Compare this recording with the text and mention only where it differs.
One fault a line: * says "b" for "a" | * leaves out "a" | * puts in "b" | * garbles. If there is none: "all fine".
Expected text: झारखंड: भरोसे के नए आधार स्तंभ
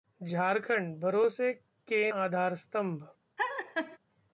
* leaves out "नए"